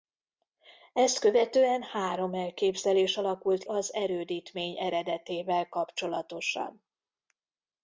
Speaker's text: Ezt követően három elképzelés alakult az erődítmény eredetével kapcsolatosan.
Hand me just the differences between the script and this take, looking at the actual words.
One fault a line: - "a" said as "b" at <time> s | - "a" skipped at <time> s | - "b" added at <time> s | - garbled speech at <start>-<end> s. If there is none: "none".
none